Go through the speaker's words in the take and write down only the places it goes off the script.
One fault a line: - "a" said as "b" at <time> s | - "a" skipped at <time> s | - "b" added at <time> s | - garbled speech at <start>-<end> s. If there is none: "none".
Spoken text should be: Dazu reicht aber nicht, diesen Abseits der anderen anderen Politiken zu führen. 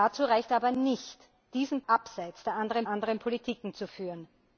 none